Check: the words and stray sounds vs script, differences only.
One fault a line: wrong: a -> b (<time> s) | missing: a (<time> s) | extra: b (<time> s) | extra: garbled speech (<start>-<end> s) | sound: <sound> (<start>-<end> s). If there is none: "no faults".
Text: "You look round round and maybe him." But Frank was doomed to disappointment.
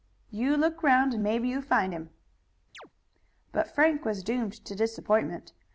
missing: round (1.1 s)
extra: you find (1.5 s)
sound: chirp (2.7-2.9 s)